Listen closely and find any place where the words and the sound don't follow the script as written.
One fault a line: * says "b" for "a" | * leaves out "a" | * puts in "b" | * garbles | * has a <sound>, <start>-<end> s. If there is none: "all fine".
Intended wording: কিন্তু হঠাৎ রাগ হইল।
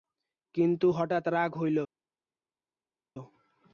all fine